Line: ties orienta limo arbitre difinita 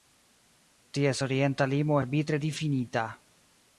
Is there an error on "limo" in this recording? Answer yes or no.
no